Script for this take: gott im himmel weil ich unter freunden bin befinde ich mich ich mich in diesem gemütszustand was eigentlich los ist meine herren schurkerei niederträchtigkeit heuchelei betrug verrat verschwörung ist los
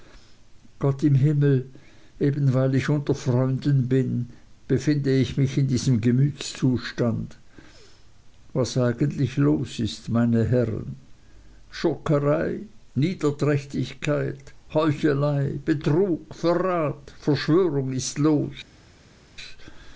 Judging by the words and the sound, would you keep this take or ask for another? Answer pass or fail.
fail